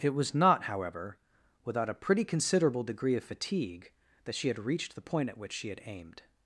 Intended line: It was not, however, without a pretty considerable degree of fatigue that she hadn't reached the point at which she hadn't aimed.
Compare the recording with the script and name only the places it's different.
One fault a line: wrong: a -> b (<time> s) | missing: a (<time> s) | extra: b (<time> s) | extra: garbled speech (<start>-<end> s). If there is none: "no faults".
wrong: hadn't -> had (4.5 s)
wrong: hadn't -> had (5.7 s)